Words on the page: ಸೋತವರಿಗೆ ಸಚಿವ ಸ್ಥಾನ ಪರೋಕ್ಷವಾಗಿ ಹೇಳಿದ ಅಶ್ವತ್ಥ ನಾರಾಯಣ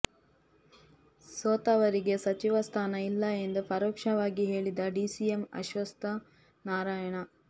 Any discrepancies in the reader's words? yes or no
yes